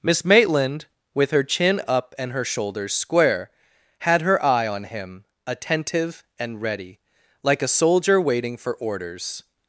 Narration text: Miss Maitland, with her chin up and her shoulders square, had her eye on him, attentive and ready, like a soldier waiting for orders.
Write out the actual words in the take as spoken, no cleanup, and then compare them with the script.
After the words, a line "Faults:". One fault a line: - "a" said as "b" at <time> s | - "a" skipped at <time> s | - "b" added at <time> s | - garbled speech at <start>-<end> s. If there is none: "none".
Miss Maitland, with her chin up and her shoulders square, had her eye on him, attentive and ready, like a soldier waiting for orders.
Faults:
none